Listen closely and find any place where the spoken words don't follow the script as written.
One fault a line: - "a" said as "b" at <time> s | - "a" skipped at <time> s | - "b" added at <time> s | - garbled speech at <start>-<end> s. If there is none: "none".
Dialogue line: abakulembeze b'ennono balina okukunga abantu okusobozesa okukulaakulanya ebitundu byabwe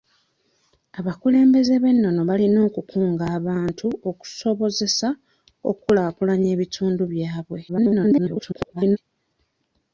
- garbled speech at 7.7-9.0 s